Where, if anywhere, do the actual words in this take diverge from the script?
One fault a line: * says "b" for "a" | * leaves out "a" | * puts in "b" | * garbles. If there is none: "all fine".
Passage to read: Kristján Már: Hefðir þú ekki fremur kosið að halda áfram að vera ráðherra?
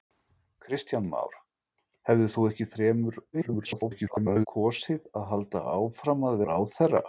* garbles
* leaves out "vera"